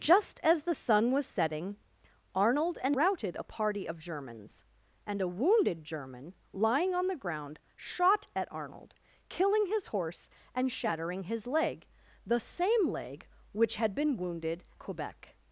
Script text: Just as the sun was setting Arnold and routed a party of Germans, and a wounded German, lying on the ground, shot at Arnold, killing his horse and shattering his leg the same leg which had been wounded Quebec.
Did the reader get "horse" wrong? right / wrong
right